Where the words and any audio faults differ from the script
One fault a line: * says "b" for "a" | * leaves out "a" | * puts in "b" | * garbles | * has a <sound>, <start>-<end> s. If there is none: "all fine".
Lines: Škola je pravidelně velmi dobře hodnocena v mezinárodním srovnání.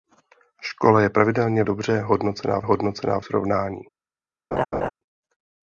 * leaves out "velmi"
* says "hodnocena" for "mezinárodním"
* has a laugh, 4.5-4.9 s